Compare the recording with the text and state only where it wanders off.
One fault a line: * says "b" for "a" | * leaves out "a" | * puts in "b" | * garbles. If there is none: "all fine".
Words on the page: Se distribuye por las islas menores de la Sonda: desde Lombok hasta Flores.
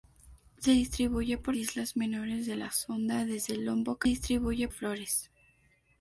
* leaves out "las"
* says "distribuye" for "hasta"